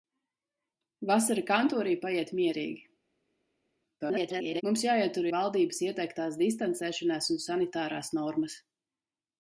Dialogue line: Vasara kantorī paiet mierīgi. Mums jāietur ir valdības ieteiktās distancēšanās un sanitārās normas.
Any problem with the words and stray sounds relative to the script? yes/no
yes